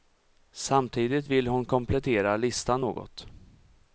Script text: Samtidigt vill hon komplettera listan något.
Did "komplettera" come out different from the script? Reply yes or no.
no